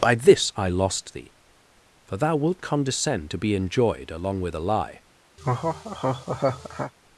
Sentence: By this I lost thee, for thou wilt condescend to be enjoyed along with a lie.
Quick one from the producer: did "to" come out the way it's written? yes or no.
yes